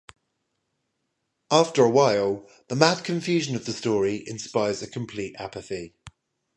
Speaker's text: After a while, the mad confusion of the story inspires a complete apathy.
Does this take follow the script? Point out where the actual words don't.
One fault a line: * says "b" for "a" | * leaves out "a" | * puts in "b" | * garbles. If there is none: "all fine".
all fine